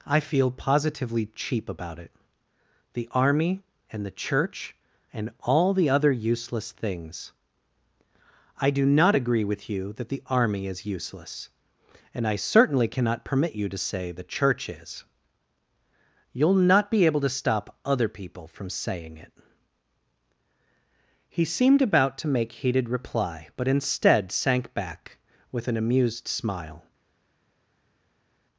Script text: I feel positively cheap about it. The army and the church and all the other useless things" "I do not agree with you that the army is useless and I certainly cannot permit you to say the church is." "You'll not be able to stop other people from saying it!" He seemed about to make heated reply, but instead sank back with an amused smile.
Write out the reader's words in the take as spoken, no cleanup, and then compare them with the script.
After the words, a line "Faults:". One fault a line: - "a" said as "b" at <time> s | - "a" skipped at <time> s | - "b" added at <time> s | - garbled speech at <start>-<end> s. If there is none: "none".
I feel positively cheap about it. The army and the church and all the other useless things" "I do not agree with you that the army is useless and I certainly cannot permit you to say the church is." "You'll not be able to stop other people from saying it!" He seemed about to make heated reply, but instead sank back with an amused smile.
Faults:
none